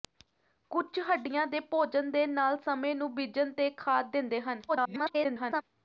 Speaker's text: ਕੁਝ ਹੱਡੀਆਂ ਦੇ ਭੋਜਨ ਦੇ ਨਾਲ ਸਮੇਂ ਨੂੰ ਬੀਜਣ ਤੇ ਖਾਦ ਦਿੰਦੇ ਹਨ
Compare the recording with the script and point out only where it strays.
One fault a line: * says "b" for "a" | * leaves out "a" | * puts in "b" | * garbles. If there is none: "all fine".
* garbles